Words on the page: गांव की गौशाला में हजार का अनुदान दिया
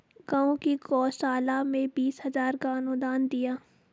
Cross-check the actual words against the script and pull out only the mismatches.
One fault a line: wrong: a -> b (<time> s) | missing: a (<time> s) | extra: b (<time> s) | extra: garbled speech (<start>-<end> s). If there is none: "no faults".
extra: बीस (1.9 s)